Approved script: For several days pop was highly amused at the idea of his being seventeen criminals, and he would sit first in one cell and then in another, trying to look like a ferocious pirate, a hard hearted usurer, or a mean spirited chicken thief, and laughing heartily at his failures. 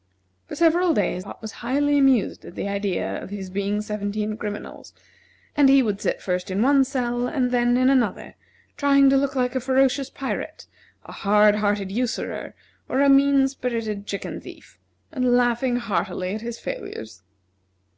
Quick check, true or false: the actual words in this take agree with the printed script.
true